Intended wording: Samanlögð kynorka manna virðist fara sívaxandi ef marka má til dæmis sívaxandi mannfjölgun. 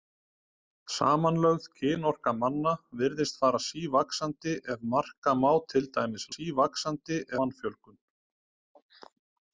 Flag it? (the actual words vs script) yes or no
no